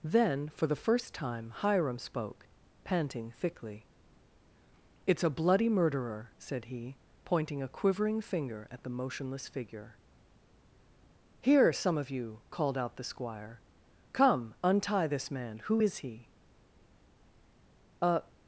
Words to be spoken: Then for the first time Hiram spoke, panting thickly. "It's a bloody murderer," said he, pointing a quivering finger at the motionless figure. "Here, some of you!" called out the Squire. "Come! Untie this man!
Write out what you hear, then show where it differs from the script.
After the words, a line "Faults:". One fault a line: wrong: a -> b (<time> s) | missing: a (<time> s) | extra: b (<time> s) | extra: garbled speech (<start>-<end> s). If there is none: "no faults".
Then for the first time Hiram spoke, panting thickly. "It's a bloody murderer," said he, pointing a quivering finger at the motionless figure. "Here, some of you!" called out the Squire. "Come! Untie this man! Who is he?" A
Faults:
extra: Who is he A (15.6 s)